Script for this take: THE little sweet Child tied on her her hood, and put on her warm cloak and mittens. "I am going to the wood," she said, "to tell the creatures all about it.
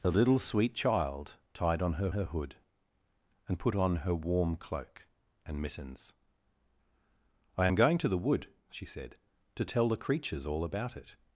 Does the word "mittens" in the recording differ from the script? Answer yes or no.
no